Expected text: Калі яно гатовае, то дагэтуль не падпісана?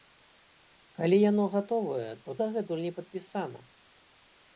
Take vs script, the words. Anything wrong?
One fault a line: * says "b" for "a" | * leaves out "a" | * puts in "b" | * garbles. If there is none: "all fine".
all fine